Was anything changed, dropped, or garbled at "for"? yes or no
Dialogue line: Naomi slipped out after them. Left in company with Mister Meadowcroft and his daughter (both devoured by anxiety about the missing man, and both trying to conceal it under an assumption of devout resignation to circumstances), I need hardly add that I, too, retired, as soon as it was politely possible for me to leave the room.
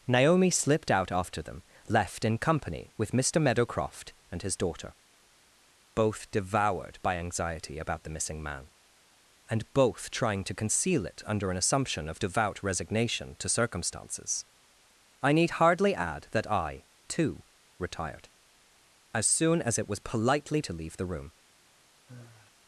yes